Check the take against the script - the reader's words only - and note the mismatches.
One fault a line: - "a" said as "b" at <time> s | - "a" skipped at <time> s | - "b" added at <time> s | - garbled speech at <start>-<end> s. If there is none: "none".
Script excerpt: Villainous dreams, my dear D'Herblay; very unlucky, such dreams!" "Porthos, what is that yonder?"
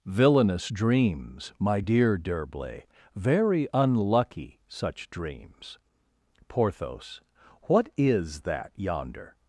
none